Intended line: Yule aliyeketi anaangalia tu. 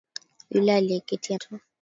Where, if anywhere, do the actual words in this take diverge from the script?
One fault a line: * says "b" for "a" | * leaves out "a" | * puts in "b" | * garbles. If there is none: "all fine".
* leaves out "anaangalia"